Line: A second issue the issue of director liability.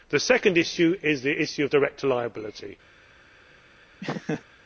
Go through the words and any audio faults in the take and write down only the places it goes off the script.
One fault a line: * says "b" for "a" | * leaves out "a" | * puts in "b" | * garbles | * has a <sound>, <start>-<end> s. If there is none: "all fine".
* says "The" for "A"
* puts in "is"
* has a laugh, 4.0-4.4 s